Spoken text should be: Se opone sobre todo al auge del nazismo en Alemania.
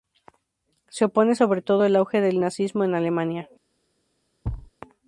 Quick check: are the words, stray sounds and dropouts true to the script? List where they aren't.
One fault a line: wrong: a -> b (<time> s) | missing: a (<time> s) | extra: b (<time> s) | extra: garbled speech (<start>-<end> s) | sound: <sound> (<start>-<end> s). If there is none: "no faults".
sound: thud (4.4-4.7 s)